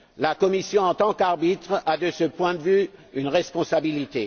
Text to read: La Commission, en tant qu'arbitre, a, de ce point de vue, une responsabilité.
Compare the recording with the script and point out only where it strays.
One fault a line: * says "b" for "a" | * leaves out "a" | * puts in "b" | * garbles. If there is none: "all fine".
all fine